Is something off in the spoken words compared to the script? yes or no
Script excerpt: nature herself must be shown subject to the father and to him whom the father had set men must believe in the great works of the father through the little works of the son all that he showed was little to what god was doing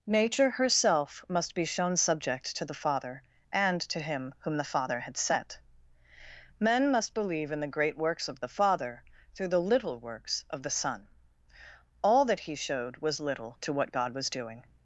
no